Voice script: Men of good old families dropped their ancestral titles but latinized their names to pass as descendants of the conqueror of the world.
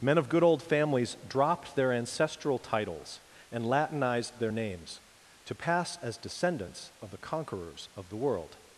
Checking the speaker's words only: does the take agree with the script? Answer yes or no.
no